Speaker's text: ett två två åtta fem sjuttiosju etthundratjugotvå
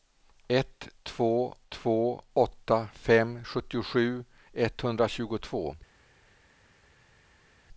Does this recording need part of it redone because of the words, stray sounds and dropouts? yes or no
no